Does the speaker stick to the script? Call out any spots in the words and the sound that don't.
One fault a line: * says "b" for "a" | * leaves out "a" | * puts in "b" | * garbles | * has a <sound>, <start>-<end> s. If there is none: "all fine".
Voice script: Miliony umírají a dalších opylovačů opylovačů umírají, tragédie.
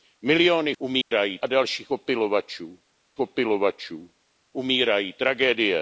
* has a dropout, 1.0-1.1 s